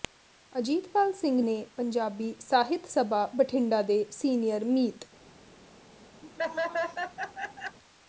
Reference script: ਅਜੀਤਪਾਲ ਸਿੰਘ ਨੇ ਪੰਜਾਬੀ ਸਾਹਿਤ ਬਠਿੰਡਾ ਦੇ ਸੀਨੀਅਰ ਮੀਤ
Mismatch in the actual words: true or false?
true